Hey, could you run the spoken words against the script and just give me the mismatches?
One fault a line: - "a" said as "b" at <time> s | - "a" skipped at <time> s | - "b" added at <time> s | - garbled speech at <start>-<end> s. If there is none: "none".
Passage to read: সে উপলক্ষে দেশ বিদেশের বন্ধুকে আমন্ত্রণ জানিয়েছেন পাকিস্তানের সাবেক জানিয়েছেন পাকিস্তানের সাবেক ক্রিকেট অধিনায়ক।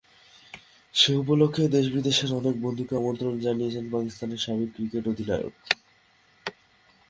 - "অনেক" added at 2.4 s
- "জানিয়েছেন পাকিস্তানের সাবেক" skipped at 4.7 s